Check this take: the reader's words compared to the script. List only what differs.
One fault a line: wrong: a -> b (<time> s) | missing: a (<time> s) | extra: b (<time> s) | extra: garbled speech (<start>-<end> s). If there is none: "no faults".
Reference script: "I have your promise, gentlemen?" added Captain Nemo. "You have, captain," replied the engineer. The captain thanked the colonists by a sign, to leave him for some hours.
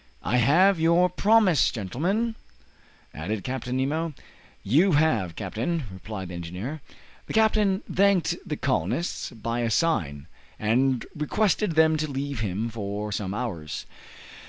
extra: and requested them (10.6 s)